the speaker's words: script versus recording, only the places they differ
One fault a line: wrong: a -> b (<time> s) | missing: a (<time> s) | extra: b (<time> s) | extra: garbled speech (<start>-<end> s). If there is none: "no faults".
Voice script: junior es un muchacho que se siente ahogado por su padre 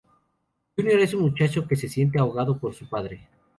no faults